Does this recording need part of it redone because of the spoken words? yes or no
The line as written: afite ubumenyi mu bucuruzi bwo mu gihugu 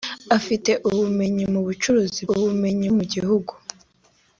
yes